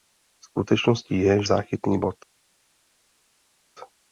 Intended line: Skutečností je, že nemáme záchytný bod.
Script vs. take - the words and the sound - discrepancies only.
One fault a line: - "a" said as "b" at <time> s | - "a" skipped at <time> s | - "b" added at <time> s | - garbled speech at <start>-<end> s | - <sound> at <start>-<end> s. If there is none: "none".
- "že nemáme" skipped at 1.4 s